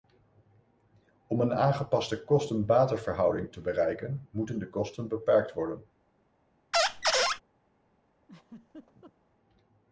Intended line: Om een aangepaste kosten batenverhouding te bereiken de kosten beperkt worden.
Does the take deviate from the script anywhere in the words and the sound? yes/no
yes